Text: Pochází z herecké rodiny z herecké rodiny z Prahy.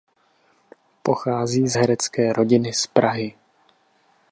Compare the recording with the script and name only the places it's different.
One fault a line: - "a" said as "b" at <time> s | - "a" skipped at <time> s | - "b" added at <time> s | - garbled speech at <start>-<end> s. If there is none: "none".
- "herecké rodiny z" skipped at 2.9 s